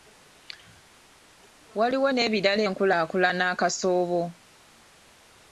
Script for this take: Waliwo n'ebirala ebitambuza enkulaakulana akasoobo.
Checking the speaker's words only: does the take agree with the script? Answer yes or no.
no